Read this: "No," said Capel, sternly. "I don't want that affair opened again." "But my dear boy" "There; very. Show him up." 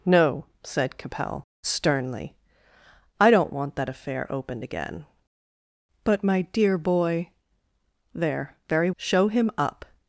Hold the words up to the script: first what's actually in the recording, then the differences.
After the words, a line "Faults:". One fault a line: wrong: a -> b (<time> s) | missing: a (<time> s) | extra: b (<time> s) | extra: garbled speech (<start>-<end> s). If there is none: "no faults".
"No," said Capel, sternly. "I don't want that affair opened again." "But my dear boy" "There; very. Show him up."
Faults:
no faults